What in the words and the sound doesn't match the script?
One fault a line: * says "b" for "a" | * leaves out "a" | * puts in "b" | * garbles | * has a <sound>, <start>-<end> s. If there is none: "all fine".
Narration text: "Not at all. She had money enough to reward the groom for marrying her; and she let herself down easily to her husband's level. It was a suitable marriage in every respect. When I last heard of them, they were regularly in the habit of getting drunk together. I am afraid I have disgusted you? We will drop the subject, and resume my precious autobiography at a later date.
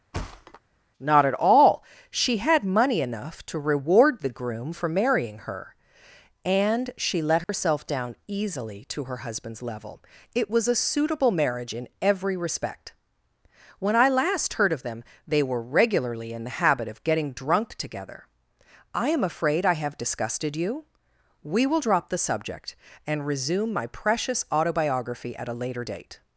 * has a thud, 0.1-0.6 s
* has a dropout, 7.4-7.5 s